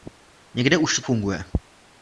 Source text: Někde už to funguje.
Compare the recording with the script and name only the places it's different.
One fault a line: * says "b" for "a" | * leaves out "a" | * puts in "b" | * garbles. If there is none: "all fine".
all fine